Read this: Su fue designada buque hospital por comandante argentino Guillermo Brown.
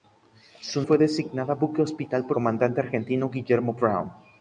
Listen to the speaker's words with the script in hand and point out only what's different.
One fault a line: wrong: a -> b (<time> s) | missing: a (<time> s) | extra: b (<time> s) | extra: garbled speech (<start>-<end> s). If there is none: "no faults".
no faults